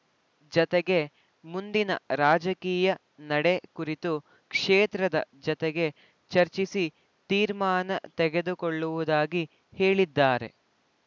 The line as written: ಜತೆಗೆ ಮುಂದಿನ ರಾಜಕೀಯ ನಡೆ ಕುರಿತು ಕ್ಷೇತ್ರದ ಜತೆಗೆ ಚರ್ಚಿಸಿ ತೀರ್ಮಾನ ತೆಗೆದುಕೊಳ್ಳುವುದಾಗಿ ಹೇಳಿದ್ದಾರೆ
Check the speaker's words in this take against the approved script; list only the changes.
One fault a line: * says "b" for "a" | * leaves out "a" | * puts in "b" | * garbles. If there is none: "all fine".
all fine